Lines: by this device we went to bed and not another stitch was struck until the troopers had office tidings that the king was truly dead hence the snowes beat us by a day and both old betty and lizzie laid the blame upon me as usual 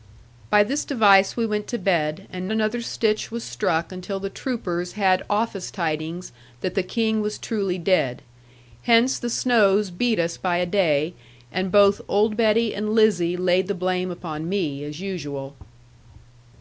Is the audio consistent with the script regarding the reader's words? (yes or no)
no